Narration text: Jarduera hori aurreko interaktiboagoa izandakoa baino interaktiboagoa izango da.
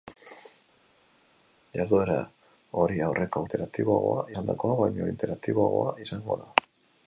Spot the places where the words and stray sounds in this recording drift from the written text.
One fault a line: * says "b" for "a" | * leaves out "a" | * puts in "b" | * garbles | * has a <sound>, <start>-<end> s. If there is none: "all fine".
all fine